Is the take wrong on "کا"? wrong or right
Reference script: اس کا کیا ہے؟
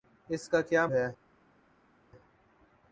right